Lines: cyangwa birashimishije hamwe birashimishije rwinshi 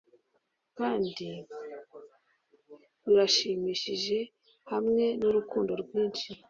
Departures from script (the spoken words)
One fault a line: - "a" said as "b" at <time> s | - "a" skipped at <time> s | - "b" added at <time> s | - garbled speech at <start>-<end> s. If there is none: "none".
- "cyangwa" said as "kandi" at 0.8 s
- "birashimishije" said as "nurukundo" at 5.2 s